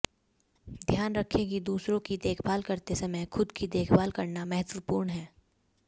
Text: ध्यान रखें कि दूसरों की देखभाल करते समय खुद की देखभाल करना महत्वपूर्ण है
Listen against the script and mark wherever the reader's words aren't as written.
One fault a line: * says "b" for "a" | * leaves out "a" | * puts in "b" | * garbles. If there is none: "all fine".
all fine